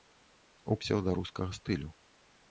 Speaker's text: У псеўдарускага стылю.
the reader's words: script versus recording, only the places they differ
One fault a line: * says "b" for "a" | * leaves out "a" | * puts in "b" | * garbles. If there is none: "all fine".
all fine